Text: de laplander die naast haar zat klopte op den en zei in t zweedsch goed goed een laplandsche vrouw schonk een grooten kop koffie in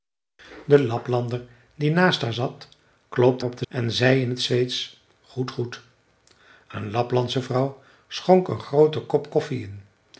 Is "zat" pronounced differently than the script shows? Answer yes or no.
no